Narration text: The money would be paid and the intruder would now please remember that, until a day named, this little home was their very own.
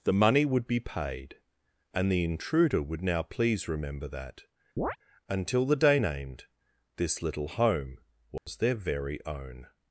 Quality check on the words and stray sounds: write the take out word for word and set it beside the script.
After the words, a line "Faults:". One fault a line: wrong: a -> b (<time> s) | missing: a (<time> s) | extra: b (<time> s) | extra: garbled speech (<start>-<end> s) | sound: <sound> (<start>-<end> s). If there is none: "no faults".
The money would be paid and the intruder would now please remember that, until the day named, this little home was their very own.
Faults:
sound: chirp (4.8-5.0 s)
wrong: a -> the (5.6 s)
sound: dropout (8.4-8.5 s)